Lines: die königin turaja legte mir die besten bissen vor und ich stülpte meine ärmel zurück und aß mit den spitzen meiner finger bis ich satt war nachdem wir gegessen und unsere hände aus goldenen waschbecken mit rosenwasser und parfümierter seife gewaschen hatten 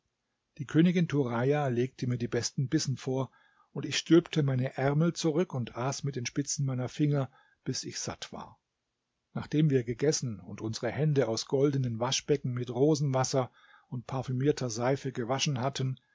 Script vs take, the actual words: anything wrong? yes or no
no